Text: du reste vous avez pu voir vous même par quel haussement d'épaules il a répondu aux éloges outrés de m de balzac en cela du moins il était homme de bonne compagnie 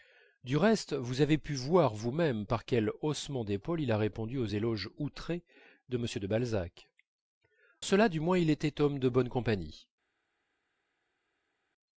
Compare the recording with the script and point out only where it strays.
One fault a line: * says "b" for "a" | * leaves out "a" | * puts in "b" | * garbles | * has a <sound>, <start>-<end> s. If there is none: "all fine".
* leaves out "en"